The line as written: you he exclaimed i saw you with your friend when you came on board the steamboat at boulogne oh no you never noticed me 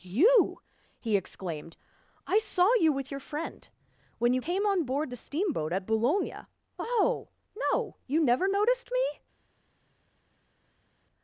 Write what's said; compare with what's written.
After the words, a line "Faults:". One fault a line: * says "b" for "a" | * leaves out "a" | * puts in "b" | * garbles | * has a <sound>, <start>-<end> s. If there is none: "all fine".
you he exclaimed i saw you with your friend when you came on board the steamboat at boulogne oh no you never noticed me
Faults:
all fine